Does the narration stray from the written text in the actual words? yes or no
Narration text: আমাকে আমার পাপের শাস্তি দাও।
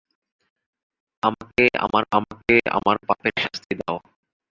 yes